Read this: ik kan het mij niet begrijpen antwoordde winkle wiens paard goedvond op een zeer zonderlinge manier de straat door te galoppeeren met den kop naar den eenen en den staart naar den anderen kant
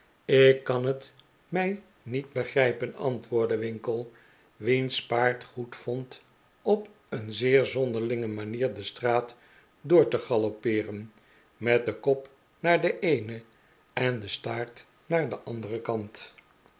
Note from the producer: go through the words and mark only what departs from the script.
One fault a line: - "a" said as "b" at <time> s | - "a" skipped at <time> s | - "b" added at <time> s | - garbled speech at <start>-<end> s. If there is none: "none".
none